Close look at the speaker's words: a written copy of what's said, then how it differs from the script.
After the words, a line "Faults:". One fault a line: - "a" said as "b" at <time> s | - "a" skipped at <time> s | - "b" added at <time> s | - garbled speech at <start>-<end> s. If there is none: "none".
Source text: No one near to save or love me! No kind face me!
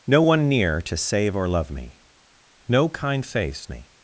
No one near to save or love me! No kind face me!
Faults:
none